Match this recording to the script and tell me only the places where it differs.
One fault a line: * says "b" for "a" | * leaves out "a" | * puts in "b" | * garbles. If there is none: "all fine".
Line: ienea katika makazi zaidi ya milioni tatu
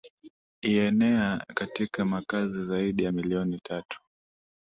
all fine